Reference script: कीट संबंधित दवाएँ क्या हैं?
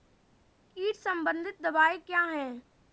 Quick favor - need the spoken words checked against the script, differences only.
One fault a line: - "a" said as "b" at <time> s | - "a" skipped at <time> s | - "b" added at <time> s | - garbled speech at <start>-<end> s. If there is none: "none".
none